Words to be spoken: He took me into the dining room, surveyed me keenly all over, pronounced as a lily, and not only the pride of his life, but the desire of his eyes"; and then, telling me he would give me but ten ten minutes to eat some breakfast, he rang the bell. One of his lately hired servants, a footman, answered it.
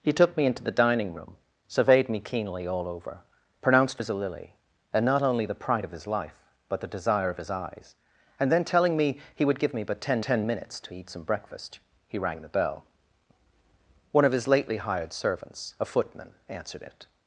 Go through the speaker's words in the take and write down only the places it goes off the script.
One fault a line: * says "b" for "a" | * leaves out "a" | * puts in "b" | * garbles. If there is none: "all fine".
all fine